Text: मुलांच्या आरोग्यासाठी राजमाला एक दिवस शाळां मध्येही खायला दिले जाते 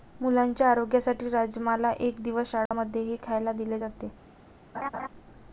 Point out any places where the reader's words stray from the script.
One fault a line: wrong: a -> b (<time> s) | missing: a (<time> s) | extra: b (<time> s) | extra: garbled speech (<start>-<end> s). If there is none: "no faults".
no faults